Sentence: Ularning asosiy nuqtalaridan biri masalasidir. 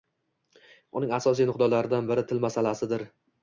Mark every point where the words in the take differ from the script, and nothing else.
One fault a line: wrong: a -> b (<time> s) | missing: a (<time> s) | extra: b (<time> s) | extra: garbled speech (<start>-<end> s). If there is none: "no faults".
wrong: Ularning -> Uning (1.0 s)
extra: til (2.3 s)